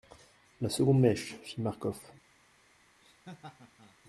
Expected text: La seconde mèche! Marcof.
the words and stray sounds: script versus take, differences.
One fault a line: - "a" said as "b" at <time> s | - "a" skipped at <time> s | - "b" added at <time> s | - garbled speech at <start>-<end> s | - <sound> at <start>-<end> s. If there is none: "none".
- "fit" added at 1.4 s
- laugh at 3.0-4.0 s